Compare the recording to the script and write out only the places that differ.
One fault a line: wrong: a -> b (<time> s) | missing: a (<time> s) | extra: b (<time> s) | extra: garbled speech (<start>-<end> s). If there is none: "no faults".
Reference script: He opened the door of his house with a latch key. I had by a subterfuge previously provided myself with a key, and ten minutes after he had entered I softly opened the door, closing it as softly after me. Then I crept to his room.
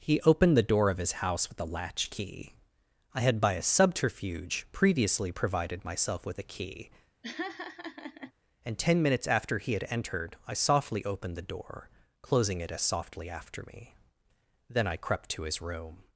no faults